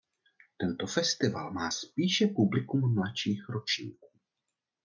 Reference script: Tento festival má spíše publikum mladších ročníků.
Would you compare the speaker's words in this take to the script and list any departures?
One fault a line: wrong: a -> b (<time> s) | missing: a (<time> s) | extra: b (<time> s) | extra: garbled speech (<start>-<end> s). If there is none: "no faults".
no faults